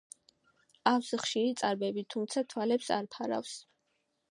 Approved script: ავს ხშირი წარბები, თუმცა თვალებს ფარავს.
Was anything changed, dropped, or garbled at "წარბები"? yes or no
no